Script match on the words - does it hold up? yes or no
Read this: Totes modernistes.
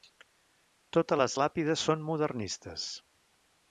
no